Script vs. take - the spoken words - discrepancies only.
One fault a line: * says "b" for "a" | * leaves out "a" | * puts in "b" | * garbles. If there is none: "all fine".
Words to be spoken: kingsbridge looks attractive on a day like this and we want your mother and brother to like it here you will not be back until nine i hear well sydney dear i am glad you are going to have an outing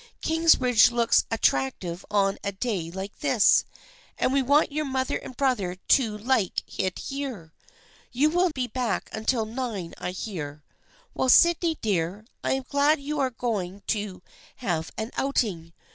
* leaves out "not"